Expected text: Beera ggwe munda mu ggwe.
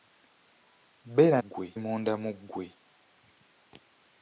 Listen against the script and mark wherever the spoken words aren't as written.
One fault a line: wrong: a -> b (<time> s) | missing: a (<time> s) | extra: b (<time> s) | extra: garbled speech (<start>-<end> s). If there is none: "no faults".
no faults